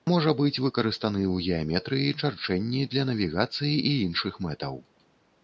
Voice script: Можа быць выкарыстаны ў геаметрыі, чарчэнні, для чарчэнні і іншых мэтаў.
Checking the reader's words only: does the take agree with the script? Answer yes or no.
no